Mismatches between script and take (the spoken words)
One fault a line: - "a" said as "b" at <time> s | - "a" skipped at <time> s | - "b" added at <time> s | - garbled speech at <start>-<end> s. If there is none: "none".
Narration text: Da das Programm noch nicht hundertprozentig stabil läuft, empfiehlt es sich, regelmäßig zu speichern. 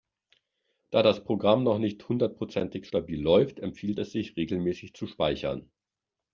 none